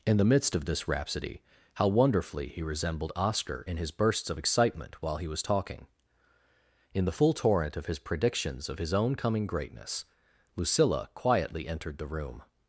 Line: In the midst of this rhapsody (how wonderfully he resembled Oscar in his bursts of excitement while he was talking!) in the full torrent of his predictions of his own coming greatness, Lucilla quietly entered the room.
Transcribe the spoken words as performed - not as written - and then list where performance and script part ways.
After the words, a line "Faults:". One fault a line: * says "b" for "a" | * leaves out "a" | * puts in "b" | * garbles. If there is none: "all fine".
In the midst of this rhapsody (how wonderfully he resembled Oscar in his bursts of excitement while he was talking!) in the full torrent of his predictions of his own coming greatness, Lucilla quietly entered the room.
Faults:
all fine